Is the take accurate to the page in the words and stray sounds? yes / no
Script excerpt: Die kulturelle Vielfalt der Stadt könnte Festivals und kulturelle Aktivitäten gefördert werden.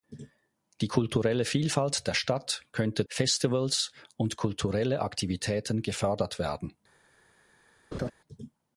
no